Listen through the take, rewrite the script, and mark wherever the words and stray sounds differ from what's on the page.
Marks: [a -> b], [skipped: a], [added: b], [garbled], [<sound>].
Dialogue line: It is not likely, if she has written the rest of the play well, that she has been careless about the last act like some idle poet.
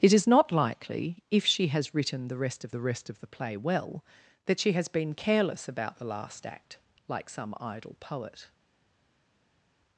It is not likely, if she has written the rest of the [added: rest of the] play well, that she has been careless about the last act like some idle poet.